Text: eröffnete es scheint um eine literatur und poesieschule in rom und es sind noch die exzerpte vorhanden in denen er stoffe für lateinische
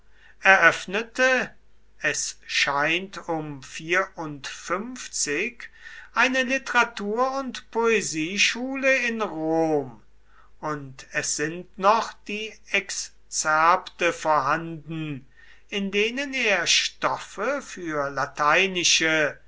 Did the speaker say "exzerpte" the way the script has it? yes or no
yes